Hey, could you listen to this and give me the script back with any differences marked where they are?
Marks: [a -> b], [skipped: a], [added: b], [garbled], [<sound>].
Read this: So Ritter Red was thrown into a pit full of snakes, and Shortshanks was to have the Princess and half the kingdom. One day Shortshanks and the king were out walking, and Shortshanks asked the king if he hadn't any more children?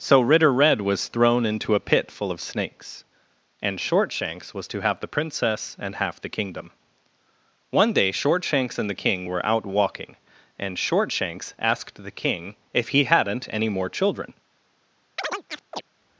So Ritter Red was thrown into a pit full of snakes, and Shortshanks was to have the Princess and half the kingdom. One day Shortshanks and the king were out walking, and Shortshanks asked the king if he hadn't any more children? [chirp]